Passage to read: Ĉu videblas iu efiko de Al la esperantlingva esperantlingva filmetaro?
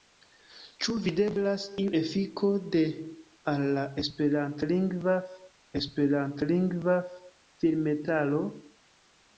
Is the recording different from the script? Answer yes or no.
no